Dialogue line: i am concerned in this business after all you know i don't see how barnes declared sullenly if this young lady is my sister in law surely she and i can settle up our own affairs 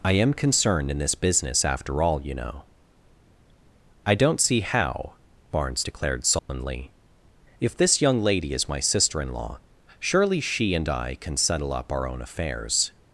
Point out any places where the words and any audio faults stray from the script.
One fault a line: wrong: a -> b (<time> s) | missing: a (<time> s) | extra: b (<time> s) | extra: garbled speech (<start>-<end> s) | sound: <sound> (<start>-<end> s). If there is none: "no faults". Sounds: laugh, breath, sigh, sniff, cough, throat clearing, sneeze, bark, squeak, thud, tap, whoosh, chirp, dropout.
sound: dropout (6.4-6.5 s)